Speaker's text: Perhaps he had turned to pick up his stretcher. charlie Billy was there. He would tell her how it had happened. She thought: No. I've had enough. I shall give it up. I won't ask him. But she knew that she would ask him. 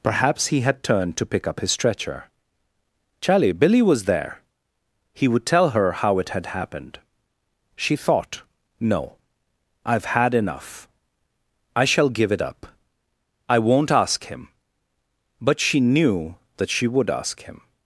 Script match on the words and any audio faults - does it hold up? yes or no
yes